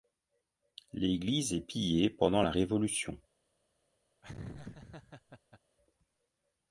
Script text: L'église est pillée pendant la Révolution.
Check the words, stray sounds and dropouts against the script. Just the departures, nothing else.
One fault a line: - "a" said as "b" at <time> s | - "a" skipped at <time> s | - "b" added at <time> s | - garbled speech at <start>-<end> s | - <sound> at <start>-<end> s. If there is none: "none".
- laugh at 4.2-5.6 s